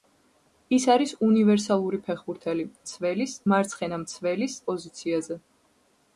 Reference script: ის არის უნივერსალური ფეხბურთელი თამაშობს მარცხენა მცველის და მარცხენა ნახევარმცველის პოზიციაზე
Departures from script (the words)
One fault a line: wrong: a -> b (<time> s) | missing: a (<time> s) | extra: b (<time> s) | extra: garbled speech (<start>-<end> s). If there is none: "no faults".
wrong: თამაშობს -> მცველის (2.8 s)
missing: და მარცხენა ნახევარმცველის (4.6 s)